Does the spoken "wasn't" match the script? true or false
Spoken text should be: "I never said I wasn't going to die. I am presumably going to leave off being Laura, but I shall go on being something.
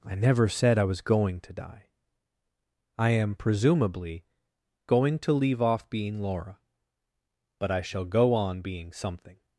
false